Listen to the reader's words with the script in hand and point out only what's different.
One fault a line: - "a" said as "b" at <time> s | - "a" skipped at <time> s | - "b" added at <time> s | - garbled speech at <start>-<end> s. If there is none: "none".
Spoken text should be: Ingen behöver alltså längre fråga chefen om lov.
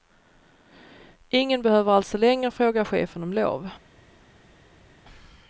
none